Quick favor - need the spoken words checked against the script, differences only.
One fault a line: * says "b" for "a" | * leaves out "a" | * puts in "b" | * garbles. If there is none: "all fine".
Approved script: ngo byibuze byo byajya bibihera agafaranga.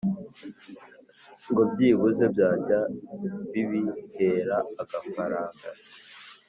* leaves out "byo"